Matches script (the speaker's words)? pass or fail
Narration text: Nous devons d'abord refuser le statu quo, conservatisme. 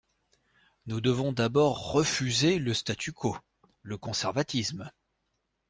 fail